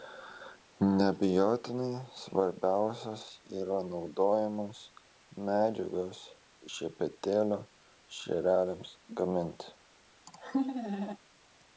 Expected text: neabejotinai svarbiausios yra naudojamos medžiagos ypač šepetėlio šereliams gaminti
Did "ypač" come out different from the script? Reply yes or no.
yes